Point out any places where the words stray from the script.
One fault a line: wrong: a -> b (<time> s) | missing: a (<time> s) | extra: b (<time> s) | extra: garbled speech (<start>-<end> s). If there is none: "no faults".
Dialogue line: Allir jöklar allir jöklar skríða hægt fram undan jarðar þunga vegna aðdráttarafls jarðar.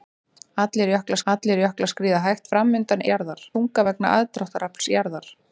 no faults